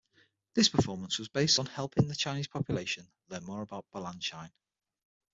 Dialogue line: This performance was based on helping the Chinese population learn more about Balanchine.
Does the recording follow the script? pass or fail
pass